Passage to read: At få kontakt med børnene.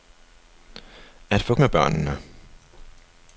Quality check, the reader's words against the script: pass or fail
fail